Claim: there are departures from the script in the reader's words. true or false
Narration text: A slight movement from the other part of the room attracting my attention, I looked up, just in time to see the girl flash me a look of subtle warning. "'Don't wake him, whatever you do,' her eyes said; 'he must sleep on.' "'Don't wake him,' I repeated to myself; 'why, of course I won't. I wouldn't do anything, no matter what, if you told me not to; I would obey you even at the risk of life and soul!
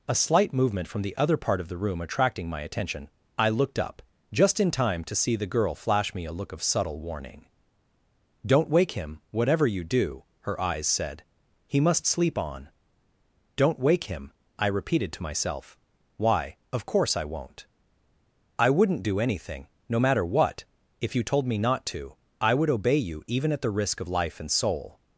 false